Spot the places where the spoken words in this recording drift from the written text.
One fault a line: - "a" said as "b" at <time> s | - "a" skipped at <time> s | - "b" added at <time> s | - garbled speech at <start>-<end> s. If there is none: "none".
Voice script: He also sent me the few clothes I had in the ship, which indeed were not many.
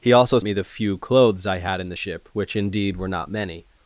- "sent" skipped at 0.4 s